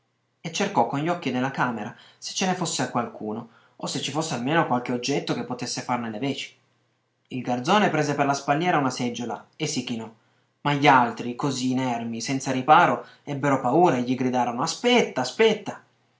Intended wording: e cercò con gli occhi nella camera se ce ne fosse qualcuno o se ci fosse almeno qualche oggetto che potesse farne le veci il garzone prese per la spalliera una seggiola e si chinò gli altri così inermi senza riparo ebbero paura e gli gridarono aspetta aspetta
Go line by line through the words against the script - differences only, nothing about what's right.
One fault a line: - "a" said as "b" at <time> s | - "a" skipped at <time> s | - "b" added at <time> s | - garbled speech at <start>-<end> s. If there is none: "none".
- "ma" added at 10.6 s